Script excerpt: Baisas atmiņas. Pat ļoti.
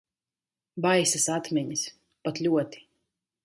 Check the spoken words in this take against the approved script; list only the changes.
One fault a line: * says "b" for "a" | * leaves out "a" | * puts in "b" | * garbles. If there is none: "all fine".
all fine